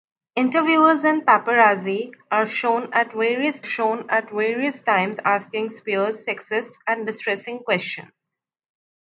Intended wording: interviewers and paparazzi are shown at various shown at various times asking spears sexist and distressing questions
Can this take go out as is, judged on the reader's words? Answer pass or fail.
pass